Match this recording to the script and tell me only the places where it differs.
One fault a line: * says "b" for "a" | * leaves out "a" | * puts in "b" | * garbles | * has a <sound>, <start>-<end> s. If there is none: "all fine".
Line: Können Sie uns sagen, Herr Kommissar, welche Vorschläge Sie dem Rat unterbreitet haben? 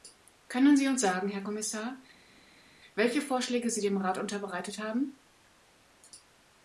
all fine